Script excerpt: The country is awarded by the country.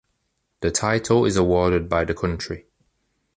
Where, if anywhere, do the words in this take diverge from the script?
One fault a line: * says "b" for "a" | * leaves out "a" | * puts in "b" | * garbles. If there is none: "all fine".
* says "title" for "country"